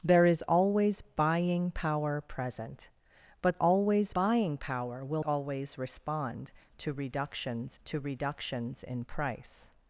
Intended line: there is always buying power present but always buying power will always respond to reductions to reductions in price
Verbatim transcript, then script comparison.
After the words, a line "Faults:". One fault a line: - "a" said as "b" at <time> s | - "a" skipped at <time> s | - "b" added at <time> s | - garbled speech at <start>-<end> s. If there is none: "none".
there is always buying power present but always buying power will always respond to reductions to reductions in price
Faults:
none